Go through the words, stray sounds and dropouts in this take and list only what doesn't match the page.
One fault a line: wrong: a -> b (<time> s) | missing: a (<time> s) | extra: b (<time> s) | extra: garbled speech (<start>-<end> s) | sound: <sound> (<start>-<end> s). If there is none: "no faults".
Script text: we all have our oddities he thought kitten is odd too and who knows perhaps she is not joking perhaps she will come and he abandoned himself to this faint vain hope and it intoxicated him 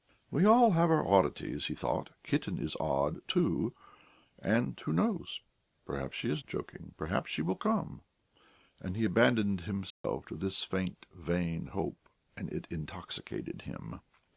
missing: not (6.4 s)
sound: dropout (9.9-10.0 s)